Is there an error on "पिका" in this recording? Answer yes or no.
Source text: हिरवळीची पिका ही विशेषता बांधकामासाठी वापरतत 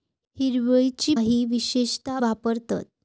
yes